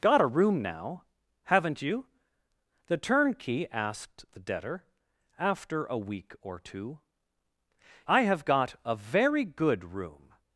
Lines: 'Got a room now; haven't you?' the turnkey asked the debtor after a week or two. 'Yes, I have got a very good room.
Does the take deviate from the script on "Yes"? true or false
true